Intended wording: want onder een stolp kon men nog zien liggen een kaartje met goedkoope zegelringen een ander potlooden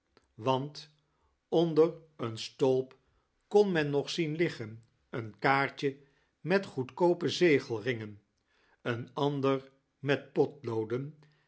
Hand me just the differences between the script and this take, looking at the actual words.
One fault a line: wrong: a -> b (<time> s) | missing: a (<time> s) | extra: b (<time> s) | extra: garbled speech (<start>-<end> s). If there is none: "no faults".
extra: met (10.0 s)